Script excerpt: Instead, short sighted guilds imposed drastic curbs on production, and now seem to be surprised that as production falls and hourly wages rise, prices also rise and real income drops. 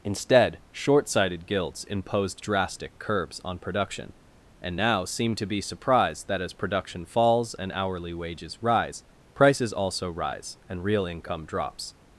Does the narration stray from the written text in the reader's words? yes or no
no